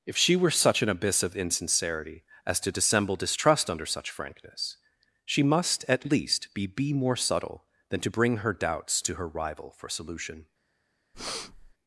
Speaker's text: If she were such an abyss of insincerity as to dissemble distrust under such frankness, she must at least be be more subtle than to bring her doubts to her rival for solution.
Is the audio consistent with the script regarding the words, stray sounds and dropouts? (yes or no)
no